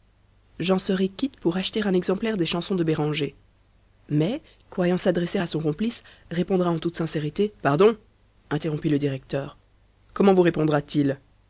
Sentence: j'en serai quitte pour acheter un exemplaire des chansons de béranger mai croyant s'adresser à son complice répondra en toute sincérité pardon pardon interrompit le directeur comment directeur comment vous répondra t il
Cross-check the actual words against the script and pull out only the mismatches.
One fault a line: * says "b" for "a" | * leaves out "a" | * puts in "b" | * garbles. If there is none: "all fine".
* leaves out "pardon"
* leaves out "directeur comment"